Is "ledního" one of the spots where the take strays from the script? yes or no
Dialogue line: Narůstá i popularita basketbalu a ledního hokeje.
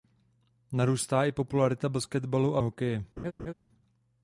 yes